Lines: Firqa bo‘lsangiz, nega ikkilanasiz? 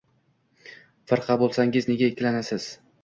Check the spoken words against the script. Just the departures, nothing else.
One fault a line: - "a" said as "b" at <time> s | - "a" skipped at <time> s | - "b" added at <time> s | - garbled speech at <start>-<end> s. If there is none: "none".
none